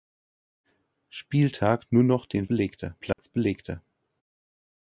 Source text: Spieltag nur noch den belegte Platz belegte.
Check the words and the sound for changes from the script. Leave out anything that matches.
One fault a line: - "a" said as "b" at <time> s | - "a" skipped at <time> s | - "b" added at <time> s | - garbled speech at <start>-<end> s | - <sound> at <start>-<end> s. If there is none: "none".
- dropout at 3.1-3.2 s